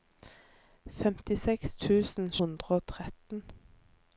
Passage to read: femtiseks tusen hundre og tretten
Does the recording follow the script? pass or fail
pass